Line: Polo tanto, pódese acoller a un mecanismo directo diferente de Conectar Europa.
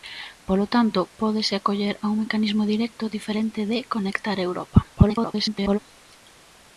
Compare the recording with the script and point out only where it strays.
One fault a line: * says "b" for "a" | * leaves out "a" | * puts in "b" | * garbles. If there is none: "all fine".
* garbles